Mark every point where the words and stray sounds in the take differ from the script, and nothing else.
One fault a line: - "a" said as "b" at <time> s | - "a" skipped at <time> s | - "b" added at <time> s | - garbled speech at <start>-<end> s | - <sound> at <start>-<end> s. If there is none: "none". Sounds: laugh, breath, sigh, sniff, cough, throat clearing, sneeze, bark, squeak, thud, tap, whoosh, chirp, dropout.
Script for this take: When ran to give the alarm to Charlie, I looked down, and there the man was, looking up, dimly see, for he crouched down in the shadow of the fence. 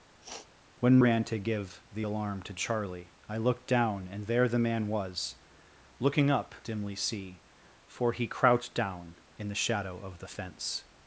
- sniff at 0.2-0.5 s